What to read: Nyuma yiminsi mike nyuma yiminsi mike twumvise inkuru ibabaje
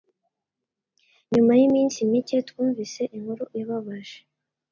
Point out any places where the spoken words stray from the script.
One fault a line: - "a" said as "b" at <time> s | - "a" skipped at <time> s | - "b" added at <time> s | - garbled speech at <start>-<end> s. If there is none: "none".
- "nyuma yiminsi mike" skipped at 2.4 s